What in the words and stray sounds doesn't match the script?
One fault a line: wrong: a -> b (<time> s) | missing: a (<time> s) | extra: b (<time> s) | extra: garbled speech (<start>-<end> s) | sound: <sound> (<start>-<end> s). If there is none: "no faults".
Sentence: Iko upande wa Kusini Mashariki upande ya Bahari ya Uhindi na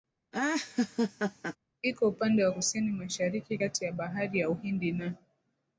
sound: laugh (0.3-1.6 s)
wrong: upande -> kati (3.6 s)